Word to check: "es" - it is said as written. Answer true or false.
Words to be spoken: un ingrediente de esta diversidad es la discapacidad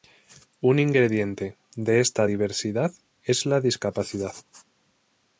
true